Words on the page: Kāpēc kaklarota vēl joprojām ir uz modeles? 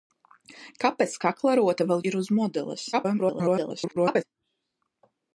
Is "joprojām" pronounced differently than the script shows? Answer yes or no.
yes